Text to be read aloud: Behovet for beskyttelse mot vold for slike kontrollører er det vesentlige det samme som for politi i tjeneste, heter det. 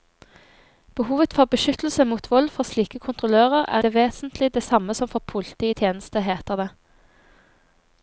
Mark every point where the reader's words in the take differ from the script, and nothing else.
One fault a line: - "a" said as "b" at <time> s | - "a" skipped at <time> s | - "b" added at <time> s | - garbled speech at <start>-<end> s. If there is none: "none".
none